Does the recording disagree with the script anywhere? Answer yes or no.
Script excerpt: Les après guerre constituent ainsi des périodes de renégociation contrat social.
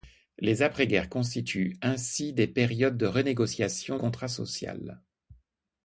no